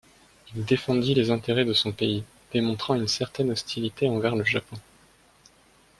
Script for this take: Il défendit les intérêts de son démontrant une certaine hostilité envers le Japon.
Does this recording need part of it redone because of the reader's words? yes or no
yes